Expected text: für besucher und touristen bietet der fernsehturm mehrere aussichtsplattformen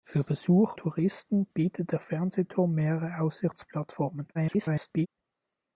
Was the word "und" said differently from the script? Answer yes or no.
yes